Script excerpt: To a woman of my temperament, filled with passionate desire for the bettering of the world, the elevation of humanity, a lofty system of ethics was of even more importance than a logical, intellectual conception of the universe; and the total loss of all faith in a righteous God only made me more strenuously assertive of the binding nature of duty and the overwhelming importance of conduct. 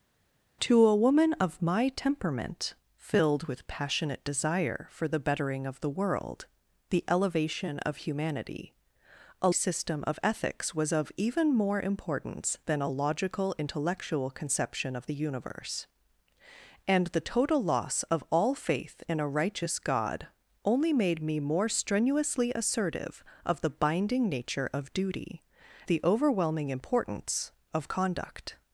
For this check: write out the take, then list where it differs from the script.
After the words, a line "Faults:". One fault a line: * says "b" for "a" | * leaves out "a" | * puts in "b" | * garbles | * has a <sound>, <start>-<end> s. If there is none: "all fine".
To a woman of my temperament, filled with passionate desire for the bettering of the world, the elevation of humanity, a system of ethics was of even more importance than a logical, intellectual conception of the universe; and the total loss of all faith in a righteous God only made me more strenuously assertive of the binding nature of duty the overwhelming importance of conduct.
Faults:
* leaves out "lofty"
* leaves out "and"